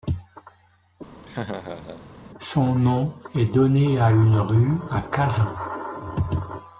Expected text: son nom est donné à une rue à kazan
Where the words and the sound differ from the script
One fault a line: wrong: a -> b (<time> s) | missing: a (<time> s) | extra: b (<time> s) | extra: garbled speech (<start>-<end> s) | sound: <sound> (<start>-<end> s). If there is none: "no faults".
sound: laugh (1.2-2.1 s)